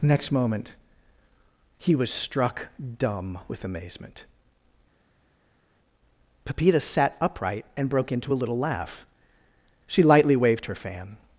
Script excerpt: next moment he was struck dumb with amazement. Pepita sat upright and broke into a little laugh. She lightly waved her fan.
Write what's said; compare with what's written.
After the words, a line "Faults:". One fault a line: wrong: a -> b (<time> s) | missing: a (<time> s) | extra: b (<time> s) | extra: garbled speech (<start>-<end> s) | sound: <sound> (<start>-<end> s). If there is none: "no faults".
next moment he was struck dumb with amazement. Pepita sat upright and broke into a little laugh. She lightly waved her fan.
Faults:
no faults